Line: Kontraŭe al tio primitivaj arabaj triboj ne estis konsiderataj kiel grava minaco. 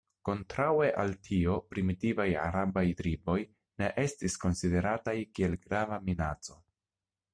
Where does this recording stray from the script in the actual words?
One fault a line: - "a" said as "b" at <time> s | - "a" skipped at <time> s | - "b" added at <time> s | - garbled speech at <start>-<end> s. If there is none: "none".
none